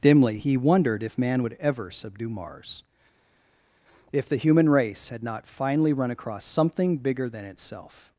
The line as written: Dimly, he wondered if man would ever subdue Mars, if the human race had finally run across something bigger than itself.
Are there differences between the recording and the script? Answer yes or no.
yes